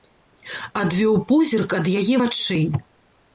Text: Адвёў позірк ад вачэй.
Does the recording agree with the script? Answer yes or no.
no